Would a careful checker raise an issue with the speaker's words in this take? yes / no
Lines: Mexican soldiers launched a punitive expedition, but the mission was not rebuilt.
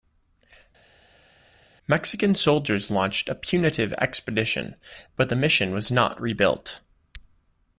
no